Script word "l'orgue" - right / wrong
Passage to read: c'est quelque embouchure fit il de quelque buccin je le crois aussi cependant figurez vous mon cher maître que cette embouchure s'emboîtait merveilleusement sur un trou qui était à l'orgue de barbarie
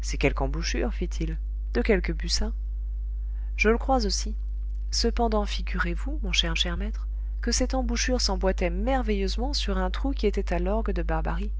right